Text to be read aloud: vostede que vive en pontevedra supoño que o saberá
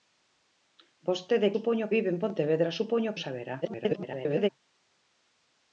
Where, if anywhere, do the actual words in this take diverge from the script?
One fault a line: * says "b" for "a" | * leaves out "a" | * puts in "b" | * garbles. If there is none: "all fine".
* says "supoño" for "que"
* leaves out "que"
* garbles